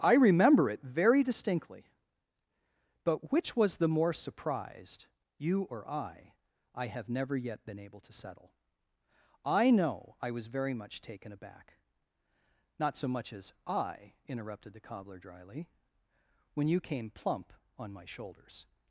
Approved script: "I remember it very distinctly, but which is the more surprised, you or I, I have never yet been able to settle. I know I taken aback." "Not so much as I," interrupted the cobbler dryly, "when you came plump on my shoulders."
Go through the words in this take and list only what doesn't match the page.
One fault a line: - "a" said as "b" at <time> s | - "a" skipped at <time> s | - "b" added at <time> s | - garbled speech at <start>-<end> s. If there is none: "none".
- "is" said as "was" at 3.5 s
- "was very much" added at 10.3 s